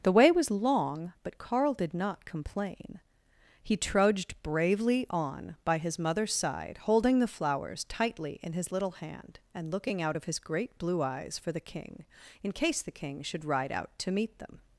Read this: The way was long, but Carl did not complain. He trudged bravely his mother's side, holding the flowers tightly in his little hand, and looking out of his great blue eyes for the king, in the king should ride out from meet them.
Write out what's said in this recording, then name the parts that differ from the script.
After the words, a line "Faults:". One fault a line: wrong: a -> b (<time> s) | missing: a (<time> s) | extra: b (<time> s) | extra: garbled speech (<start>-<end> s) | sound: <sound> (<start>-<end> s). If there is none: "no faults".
The way was long, but Carl did not complain. He trudged bravely on by his mother's side, holding the flowers tightly in his little hand, and looking out of his great blue eyes for the king, in case the king should ride out to meet them.
Faults:
extra: on by (5.1 s)
extra: case (12.5 s)
wrong: from -> to (14.0 s)